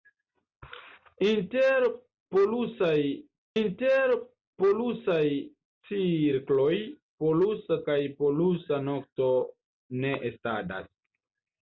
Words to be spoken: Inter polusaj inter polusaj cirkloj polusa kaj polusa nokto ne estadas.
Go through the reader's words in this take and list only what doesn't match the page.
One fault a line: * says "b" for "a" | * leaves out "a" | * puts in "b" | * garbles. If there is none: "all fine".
all fine